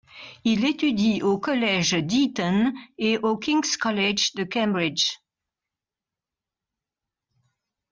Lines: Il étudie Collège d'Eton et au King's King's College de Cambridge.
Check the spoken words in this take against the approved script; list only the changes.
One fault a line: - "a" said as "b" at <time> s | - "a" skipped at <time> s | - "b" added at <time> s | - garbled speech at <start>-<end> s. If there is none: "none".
- "au" added at 1.2 s
- "King's" skipped at 3.8 s